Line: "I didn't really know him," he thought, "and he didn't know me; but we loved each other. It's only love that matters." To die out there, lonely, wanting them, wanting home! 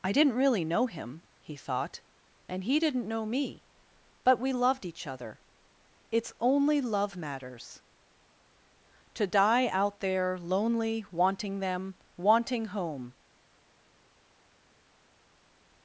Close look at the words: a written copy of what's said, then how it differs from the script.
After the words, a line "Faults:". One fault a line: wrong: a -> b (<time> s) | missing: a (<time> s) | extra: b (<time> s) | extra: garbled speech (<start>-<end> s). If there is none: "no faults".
"I didn't really know him," he thought, "and he didn't know me; but we loved each other. It's only love matters." To die out there, lonely, wanting them, wanting home!
Faults:
missing: that (7.2 s)